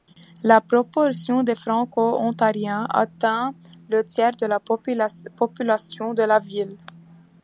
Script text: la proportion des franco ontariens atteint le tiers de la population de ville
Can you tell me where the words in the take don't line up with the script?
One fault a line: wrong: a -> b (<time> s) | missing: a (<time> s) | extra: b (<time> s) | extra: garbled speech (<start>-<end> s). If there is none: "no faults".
extra: la (6.2 s)